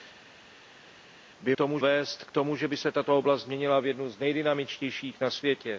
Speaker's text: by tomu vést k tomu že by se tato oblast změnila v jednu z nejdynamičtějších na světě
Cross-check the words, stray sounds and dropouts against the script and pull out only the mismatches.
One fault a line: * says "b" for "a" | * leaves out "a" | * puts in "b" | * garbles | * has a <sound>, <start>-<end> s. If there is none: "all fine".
all fine